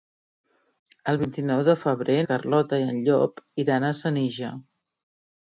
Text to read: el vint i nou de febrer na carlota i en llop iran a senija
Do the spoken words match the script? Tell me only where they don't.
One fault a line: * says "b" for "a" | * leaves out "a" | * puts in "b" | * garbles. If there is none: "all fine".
* leaves out "na"